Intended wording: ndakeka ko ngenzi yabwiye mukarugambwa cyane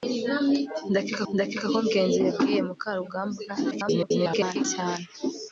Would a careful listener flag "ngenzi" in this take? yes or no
no